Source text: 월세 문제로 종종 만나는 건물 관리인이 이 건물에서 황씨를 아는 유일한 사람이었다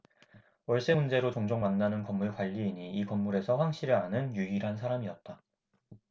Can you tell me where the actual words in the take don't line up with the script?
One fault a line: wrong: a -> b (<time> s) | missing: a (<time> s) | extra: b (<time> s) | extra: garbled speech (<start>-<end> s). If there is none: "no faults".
no faults